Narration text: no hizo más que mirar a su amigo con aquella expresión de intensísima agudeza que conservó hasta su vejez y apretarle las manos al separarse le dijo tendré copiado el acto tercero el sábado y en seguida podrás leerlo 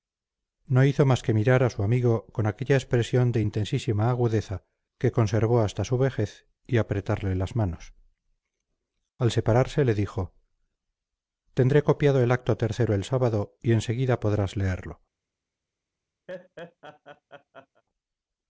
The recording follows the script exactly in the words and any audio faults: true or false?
false